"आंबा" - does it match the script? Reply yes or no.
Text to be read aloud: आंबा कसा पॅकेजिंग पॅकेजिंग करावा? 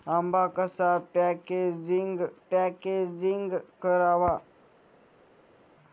yes